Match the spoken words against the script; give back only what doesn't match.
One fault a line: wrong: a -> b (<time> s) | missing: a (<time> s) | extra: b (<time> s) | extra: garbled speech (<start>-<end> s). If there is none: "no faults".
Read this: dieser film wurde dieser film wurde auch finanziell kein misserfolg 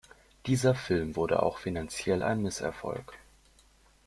missing: dieser film wurde (1.4 s)
wrong: kein -> ein (2.2 s)